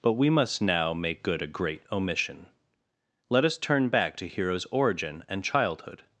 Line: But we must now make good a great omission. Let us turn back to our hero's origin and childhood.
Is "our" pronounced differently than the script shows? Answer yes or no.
yes